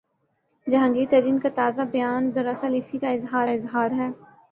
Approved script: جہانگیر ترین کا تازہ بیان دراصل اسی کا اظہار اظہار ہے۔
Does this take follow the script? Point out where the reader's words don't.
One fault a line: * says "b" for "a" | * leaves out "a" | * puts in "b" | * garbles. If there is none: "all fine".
all fine